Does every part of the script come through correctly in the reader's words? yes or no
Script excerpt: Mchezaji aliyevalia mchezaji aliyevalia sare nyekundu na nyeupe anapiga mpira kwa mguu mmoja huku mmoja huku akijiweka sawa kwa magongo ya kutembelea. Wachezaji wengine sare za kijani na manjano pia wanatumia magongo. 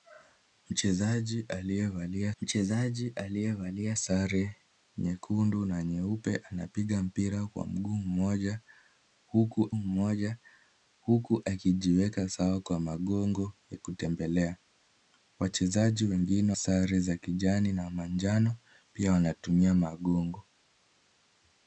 yes